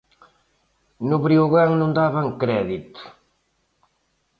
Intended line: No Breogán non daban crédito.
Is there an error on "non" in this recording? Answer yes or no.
no